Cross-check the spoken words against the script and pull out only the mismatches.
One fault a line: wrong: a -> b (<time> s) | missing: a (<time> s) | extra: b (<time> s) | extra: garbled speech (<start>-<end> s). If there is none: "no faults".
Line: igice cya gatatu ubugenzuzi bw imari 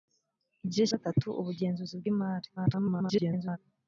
missing: cya (0.8 s)
extra: garbled speech (2.6-3.6 s)